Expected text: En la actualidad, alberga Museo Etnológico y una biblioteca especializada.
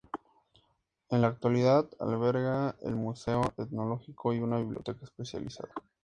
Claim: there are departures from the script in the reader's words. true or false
true